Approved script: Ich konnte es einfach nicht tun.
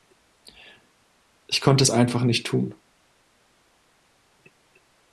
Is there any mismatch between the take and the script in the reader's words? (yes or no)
no